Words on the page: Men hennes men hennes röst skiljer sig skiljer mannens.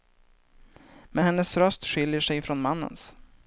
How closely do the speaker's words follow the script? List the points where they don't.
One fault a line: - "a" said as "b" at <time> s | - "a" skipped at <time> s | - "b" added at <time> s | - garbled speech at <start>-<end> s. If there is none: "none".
- "men hennes" skipped at 1.6 s
- "skiljer" said as "från" at 2.4 s